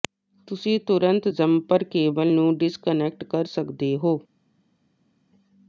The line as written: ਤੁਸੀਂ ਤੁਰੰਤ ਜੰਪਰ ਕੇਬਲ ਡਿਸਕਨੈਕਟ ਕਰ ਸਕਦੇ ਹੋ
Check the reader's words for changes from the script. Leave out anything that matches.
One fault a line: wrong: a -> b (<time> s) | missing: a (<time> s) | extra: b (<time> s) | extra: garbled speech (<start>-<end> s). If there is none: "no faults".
extra: ਨੂੰ (2.3 s)